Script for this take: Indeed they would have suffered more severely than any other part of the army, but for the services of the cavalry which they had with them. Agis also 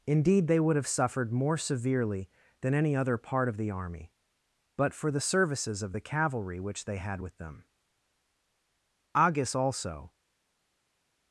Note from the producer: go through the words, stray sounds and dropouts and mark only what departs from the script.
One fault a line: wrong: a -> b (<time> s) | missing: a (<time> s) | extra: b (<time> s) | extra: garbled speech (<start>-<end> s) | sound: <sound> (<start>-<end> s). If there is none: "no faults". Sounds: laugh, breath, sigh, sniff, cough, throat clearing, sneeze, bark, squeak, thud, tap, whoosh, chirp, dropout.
no faults